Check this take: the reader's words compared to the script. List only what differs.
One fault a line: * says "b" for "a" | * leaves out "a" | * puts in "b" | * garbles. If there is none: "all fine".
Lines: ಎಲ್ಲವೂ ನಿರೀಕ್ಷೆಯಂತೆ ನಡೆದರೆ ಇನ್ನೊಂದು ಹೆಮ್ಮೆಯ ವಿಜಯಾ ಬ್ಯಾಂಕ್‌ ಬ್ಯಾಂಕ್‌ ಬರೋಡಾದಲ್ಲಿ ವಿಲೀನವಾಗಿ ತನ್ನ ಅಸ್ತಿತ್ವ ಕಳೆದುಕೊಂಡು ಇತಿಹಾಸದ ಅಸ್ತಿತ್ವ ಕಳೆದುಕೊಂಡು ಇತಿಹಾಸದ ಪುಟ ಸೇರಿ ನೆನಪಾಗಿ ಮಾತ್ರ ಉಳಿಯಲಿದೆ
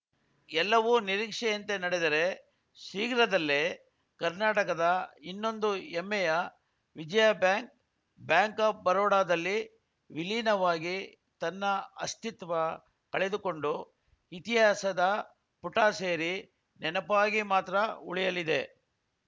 * puts in "ಶೀಘ್ರದಲ್ಲೇ ಕರ್ನಾಟಕದ"
* puts in "ಆಫ್"
* leaves out "ಅಸ್ತಿತ್ವ ಕಳೆದುಕೊಂಡು ಇತಿಹಾಸದ"